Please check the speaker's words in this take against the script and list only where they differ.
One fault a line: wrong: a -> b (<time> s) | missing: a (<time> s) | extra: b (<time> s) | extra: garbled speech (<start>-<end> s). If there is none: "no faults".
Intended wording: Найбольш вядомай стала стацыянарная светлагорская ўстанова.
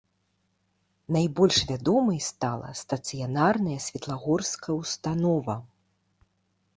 no faults